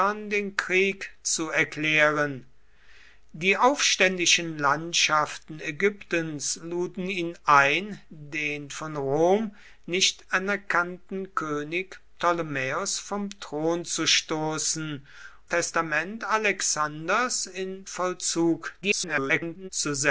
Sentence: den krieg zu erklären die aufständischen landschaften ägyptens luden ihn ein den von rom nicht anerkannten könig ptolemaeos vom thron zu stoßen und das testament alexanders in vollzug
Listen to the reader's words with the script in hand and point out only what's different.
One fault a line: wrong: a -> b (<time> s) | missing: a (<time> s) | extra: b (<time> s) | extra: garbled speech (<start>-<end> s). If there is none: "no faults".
missing: und das (15.1 s)
extra: garbled speech (18.8-19.7 s)